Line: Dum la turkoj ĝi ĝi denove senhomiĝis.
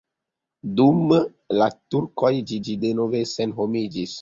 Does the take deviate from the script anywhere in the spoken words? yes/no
no